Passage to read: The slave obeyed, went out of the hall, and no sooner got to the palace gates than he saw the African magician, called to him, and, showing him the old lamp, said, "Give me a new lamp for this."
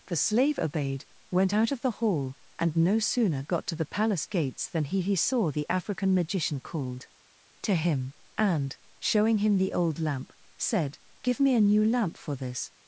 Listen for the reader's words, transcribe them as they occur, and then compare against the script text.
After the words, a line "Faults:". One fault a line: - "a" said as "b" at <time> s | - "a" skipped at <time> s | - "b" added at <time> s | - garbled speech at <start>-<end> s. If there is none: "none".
The slave obeyed, went out of the hall, and no sooner got to the palace gates than he he saw the African magician, called to him, and, showing him the old lamp, said, "Give me a new lamp for this."
Faults:
- "he" added at 5.0 s